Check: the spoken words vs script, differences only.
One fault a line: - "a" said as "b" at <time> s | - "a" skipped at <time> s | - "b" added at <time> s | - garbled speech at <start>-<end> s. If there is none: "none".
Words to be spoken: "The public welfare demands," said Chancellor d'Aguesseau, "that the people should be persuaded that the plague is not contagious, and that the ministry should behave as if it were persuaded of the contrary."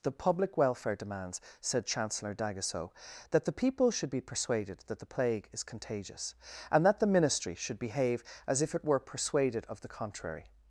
- "not" skipped at 5.6 s